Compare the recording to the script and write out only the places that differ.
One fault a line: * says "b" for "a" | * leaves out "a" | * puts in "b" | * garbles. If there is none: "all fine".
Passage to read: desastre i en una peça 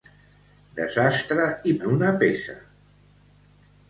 all fine